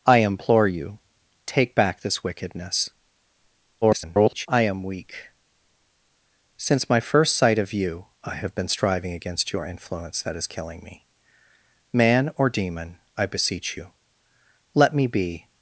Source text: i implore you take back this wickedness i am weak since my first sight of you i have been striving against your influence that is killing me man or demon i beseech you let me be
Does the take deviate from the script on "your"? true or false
false